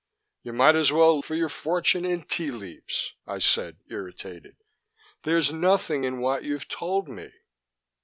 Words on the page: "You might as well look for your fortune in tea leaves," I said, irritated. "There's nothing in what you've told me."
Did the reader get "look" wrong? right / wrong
wrong